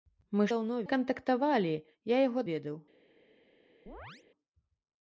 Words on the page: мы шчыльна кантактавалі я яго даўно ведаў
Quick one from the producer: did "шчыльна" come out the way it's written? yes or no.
no